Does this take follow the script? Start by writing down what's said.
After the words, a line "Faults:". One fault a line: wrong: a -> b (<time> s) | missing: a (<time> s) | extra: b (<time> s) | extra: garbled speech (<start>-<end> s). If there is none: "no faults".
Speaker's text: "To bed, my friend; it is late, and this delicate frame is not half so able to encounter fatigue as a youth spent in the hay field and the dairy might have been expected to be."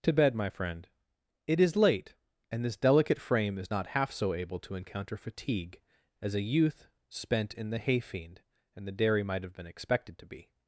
"To bed, my friend; it is late, and this delicate frame is not half so able to encounter fatigue as a youth spent in the hay fiend and the dairy might have been expected to be."
Faults:
wrong: field -> fiend (8.0 s)